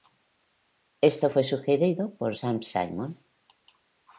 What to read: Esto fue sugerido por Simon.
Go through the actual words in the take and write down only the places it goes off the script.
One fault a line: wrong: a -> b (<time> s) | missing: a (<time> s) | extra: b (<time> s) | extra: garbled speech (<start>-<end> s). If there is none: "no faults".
extra: Sam (2.3 s)